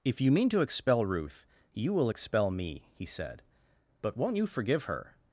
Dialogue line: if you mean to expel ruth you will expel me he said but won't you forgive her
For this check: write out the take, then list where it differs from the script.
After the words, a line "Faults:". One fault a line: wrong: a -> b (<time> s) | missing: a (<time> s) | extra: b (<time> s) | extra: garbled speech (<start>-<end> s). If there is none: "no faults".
if you mean to expel ruth you will expel me he said but won't you forgive her
Faults:
no faults